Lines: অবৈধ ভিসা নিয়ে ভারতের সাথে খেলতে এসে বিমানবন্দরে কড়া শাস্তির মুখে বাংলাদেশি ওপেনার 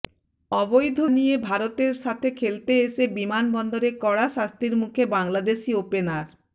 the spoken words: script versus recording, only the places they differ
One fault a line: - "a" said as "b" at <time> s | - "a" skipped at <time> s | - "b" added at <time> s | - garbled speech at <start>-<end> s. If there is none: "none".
- "ভিসা" skipped at 1.0 s